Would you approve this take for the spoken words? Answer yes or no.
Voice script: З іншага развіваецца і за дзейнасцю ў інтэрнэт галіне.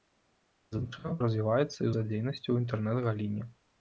yes